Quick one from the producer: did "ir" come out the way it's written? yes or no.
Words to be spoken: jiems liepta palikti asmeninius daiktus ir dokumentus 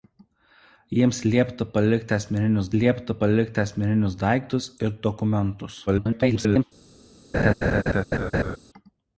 yes